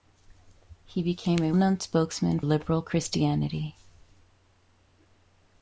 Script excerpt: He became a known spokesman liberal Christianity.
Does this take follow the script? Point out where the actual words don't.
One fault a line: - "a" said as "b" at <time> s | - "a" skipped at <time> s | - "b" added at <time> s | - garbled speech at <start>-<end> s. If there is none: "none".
none